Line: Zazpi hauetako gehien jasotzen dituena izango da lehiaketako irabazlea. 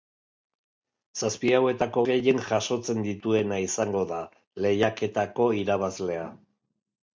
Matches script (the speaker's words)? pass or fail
pass